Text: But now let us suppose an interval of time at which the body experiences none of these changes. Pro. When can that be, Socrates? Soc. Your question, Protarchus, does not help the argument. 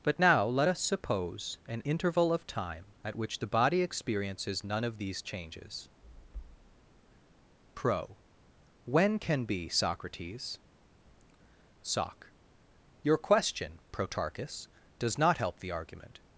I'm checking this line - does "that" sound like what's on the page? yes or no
no